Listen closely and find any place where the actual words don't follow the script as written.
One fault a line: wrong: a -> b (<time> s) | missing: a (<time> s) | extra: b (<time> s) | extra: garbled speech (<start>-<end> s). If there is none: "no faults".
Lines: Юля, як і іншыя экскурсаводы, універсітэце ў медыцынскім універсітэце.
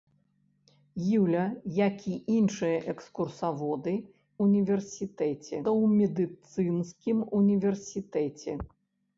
no faults